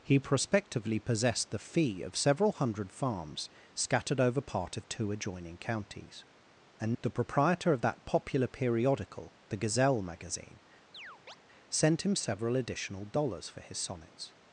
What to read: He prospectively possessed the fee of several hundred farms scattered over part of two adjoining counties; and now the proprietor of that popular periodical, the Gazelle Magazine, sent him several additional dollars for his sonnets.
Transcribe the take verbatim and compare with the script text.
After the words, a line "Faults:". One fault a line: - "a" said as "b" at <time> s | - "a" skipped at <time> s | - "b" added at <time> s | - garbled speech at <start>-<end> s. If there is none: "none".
He prospectively possessed the fee of several hundred farms scattered over part of two adjoining counties; and the proprietor of that popular periodical, the Gazelle Magazine, sent him several additional dollars for his sonnets.
Faults:
- "now" skipped at 7.0 s